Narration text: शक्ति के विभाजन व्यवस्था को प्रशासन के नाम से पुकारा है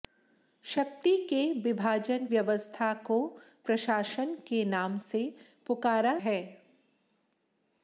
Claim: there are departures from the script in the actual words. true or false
false